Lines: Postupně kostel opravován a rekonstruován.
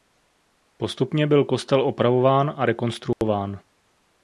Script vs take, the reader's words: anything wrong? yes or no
yes